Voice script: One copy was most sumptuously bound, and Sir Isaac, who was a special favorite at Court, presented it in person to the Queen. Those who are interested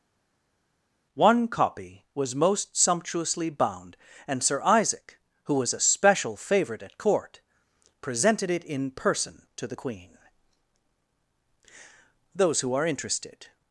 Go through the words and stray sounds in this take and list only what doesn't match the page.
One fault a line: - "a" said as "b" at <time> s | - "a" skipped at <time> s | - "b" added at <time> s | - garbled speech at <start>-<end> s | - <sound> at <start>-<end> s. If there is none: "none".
none